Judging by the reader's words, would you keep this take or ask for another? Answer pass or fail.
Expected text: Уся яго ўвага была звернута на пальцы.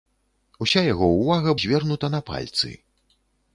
fail